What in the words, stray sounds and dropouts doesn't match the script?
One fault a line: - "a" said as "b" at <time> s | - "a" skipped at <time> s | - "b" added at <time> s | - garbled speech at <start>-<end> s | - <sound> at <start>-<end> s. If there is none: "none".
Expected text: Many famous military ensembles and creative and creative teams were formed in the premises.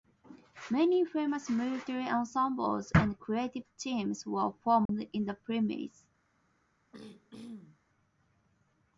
- "and creative" skipped at 3.6 s
- dropout at 4.9-4.9 s
- throat clearing at 6.9-7.8 s